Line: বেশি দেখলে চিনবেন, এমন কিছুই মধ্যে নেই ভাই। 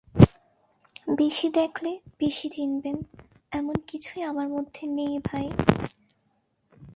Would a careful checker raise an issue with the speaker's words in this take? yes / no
yes